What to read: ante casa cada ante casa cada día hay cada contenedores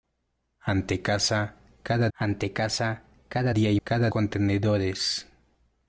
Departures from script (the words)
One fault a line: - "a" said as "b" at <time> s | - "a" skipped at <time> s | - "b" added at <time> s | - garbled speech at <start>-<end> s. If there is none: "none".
none